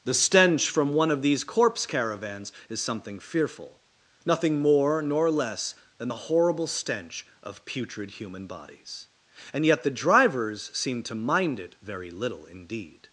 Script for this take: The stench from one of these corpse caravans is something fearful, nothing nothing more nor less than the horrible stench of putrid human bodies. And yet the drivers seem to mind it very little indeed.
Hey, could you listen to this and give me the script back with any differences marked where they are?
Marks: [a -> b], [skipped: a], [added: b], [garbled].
The stench from one of these corpse caravans is something fearful, nothing [skipped: nothing] more nor less than the horrible stench of putrid human bodies. And yet the drivers seem to mind it very little indeed.